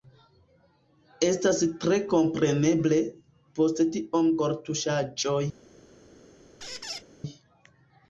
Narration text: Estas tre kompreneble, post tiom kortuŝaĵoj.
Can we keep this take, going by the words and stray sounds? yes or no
no